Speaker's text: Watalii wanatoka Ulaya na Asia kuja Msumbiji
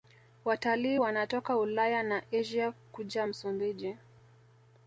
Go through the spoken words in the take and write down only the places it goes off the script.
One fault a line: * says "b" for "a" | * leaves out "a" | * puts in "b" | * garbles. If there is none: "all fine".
all fine